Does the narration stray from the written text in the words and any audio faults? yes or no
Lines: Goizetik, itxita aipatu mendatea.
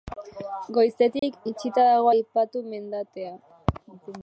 yes